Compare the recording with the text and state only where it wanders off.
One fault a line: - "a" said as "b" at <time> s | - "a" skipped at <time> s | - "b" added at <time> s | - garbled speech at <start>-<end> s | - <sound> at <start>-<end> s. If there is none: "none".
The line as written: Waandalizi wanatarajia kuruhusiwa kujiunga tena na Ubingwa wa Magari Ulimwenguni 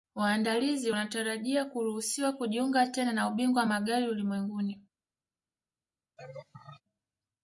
- laugh at 6.2-6.8 s